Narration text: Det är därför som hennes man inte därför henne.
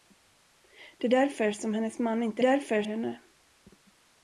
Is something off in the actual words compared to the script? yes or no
no